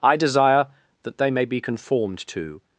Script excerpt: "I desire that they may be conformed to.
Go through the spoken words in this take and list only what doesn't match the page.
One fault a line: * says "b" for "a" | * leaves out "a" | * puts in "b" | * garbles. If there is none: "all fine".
all fine